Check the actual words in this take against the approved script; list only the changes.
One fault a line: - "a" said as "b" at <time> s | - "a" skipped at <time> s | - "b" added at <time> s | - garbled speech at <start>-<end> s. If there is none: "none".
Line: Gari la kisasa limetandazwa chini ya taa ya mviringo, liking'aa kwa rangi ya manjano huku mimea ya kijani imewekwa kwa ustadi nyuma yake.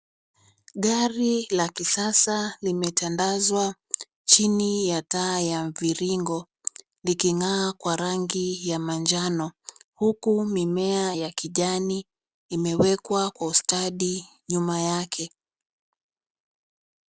none